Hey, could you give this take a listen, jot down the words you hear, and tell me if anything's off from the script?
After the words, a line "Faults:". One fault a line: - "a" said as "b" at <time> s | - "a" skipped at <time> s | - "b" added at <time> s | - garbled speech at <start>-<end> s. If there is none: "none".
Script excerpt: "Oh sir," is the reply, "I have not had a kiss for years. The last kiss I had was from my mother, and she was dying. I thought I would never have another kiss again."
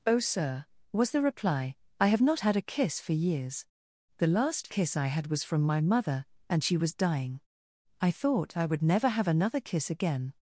"Oh sir," was the reply, "I have not had a kiss for years. The last kiss I had was from my mother, and she was dying. I thought I would never have another kiss again."
Faults:
- "is" said as "was" at 0.9 s